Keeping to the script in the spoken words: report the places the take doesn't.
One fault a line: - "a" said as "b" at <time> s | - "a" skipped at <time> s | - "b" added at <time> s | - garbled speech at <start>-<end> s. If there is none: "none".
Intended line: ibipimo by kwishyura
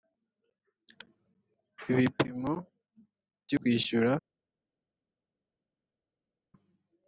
none